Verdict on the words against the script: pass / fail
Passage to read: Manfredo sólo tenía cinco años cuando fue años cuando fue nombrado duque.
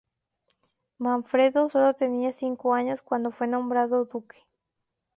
fail